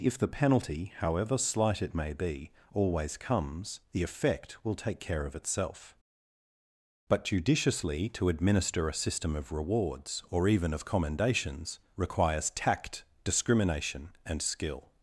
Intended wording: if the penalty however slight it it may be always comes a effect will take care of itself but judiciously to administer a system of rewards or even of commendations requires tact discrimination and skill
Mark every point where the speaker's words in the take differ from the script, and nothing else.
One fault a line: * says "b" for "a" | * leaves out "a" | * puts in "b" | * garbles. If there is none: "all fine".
* leaves out "it"
* says "the" for "a"